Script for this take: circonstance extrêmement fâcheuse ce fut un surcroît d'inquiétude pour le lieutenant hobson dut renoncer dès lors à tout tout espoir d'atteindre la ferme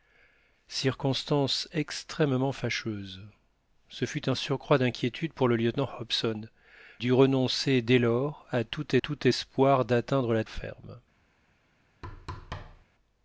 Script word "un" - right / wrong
right